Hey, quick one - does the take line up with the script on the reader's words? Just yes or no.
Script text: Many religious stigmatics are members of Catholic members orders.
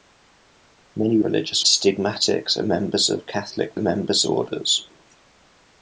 yes